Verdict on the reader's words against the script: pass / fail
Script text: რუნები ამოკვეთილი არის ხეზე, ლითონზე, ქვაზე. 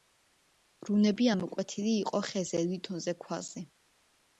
fail